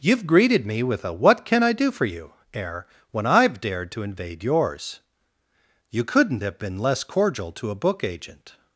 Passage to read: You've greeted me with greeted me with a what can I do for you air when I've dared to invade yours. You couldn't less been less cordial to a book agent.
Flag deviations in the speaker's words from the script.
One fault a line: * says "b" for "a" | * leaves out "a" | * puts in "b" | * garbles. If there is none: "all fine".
* leaves out "greeted me with"
* says "have" for "less"